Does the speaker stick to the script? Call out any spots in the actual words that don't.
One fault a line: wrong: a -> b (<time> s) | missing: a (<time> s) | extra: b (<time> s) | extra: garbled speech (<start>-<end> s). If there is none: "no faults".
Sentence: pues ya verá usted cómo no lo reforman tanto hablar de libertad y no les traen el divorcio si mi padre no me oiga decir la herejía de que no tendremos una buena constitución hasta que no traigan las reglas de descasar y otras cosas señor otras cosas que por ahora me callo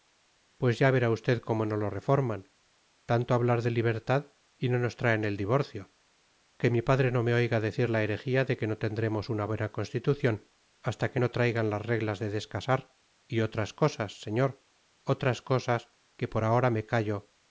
wrong: les -> nos (4.8 s)
wrong: si -> que (6.6 s)